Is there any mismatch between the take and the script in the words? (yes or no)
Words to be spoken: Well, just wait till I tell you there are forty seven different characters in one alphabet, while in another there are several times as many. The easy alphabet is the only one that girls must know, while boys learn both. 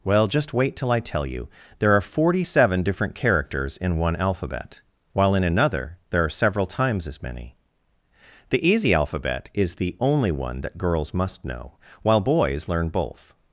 no